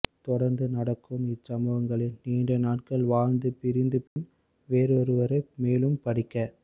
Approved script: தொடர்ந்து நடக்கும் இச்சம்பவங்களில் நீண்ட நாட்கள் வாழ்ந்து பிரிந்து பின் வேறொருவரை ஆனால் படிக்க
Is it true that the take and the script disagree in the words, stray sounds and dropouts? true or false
true